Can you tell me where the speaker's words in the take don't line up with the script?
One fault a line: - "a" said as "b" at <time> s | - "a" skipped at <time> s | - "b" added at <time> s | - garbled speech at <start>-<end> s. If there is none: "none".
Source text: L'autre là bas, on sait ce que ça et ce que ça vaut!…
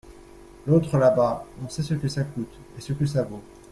- "coûte" added at 2.2 s